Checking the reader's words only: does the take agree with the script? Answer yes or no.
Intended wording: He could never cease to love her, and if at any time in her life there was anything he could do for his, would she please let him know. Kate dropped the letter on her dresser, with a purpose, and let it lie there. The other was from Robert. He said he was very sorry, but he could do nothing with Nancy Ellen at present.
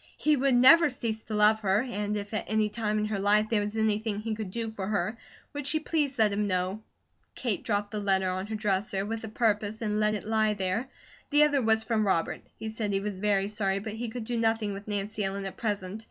no